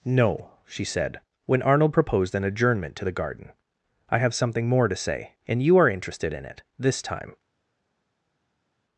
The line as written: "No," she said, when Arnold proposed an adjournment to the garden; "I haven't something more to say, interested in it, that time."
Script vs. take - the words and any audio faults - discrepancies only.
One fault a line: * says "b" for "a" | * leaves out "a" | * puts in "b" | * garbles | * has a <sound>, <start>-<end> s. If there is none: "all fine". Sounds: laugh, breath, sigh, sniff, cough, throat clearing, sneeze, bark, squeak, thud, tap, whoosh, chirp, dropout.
* says "have" for "haven't"
* puts in "and you are"
* says "this" for "that"